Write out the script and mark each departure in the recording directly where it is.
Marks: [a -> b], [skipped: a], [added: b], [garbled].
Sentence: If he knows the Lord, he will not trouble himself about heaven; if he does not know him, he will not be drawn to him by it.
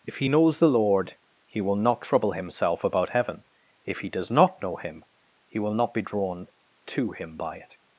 If he knows the Lord, he will not trouble himself about heaven; if he does not know him, he will not be drawn to him by it.